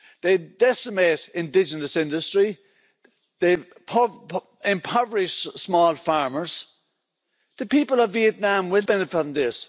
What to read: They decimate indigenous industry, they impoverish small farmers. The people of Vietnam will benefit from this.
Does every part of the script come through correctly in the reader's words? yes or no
yes